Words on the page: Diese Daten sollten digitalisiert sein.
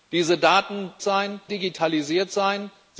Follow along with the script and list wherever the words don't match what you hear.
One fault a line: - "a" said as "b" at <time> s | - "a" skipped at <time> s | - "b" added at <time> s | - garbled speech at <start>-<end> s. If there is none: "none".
- "sollten" said as "sein" at 1.0 s